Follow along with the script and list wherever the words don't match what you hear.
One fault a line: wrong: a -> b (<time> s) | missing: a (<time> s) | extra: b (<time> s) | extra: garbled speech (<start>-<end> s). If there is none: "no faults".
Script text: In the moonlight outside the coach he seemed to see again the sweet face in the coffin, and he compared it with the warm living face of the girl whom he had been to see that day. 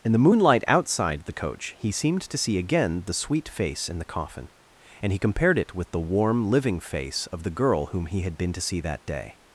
no faults